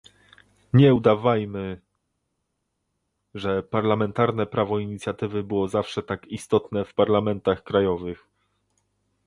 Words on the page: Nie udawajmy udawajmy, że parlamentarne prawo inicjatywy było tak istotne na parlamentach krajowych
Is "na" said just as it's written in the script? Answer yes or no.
no